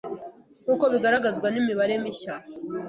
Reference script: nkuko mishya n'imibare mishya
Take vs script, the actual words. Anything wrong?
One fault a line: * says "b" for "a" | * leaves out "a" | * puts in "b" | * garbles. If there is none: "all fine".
* says "bigaragazwa" for "mishya"